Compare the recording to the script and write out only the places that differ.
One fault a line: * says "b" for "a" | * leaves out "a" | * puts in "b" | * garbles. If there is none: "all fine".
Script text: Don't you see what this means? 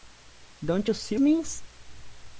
* leaves out "what this"